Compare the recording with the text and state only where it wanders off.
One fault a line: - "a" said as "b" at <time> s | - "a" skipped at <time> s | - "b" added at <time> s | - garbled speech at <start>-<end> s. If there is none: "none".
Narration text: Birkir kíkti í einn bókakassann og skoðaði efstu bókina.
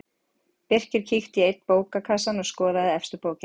none